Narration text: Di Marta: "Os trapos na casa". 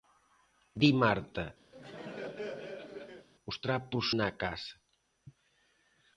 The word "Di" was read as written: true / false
true